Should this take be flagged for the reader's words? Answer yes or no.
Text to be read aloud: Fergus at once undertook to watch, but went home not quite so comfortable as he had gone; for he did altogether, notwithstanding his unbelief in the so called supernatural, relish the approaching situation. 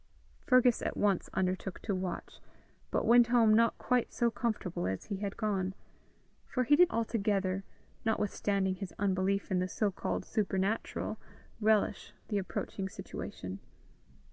no